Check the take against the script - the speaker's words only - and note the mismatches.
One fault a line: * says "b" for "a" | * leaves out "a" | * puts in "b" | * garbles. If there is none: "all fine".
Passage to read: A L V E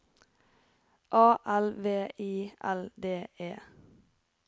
* puts in "I L D"